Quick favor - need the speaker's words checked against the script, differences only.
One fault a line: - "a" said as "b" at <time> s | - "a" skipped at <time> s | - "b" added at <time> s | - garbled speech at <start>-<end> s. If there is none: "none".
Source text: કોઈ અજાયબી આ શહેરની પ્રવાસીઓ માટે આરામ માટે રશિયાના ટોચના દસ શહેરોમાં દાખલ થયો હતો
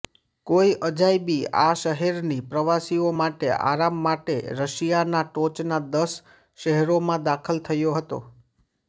none